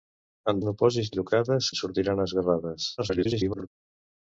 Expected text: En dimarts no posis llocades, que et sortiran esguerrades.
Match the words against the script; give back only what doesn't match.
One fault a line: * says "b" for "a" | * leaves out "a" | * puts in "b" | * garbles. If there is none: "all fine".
* leaves out "dimarts"
* leaves out "que"
* garbles